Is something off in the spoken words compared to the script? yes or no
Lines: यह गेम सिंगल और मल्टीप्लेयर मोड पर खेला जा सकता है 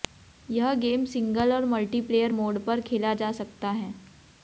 no